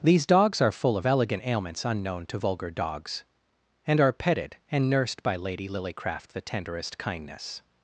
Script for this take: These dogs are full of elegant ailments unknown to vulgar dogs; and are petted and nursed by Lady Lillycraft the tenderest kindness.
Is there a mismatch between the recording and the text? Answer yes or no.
no